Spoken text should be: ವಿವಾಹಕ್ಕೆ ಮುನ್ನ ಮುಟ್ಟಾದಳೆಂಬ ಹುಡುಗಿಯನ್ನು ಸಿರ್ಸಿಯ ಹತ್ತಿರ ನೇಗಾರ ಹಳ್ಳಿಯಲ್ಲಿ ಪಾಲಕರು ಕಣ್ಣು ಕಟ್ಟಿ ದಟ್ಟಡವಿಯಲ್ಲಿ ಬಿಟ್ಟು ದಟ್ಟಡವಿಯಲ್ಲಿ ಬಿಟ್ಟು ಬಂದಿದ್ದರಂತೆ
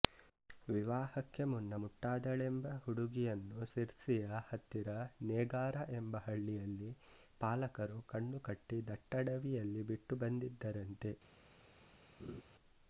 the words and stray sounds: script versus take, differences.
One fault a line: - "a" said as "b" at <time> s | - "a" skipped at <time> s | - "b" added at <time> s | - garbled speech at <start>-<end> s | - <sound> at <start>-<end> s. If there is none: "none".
- "ಎಂಬ" added at 5.9 s
- "ದಟ್ಟಡವಿಯಲ್ಲಿ ಬಿಟ್ಟು" skipped at 10.2 s
- laugh at 12.2-12.4 s